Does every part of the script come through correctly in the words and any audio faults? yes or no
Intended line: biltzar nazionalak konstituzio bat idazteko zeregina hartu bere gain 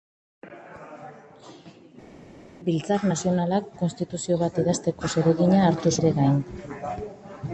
yes